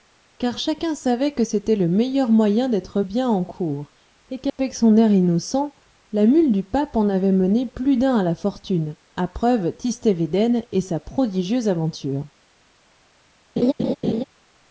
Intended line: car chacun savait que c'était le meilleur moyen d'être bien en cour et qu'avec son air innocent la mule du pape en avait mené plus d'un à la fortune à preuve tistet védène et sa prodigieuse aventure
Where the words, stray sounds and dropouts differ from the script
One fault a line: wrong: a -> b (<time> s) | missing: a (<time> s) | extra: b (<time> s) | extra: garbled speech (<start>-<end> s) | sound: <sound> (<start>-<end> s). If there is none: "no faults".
sound: dropout (4.5-4.6 s)
sound: laugh (13.6-14.2 s)